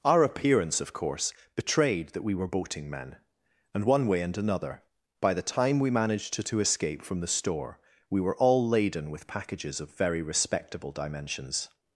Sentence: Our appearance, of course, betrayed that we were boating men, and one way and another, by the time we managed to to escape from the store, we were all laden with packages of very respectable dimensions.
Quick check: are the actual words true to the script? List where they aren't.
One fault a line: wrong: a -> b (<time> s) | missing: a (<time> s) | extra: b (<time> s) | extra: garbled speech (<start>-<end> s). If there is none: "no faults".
no faults